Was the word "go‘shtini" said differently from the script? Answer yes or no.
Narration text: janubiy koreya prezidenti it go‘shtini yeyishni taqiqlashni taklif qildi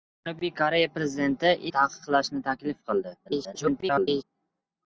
yes